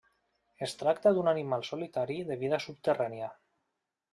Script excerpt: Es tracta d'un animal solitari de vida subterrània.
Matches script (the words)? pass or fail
pass